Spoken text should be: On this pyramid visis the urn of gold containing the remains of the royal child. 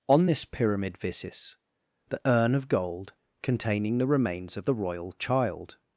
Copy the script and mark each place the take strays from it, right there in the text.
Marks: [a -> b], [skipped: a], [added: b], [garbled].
On this pyramid visis the urn of gold containing the remains of the royal child.